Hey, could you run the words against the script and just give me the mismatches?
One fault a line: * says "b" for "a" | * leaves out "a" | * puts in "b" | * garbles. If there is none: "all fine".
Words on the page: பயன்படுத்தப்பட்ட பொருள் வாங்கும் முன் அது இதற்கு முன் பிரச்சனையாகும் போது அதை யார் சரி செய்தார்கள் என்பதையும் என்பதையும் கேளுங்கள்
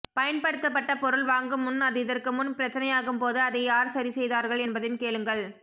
* leaves out "என்பதையும்"